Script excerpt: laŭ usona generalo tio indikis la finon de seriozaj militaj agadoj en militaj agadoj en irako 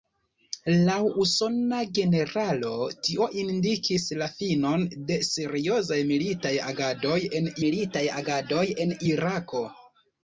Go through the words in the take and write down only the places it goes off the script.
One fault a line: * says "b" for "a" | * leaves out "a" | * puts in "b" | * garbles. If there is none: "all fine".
all fine